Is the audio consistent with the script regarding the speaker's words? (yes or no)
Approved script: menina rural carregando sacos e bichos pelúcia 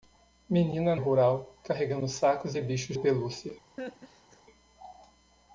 yes